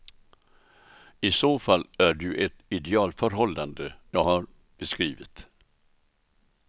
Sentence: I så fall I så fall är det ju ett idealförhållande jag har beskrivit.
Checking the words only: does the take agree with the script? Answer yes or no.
no